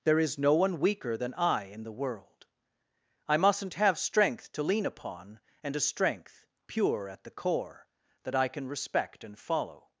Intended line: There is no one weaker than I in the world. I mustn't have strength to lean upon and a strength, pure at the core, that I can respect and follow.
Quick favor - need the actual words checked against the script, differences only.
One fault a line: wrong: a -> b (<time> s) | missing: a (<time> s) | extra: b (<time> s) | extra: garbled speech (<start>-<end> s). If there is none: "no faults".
no faults